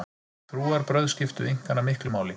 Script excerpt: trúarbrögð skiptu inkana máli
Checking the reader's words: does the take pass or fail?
fail